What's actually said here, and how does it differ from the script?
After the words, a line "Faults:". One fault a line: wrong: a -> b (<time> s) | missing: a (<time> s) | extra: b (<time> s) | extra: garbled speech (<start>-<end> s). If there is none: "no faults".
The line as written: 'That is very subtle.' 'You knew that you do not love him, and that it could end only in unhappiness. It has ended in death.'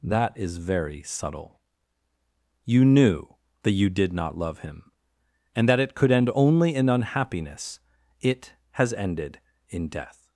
'That is very subtle.' 'You knew that you did not love him, and that it could end only in unhappiness. It has ended in death.'
Faults:
wrong: do -> did (3.9 s)